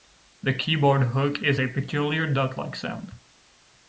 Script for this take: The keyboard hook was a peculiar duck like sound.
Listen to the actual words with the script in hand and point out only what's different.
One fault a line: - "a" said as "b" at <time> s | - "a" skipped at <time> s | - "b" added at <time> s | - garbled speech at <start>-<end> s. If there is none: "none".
- "was" said as "is" at 1.4 s